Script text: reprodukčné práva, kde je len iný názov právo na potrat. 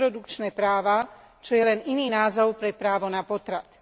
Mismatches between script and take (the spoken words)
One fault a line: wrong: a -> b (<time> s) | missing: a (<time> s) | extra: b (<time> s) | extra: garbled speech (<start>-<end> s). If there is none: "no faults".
wrong: kde -> čo (1.4 s)
extra: pre (2.5 s)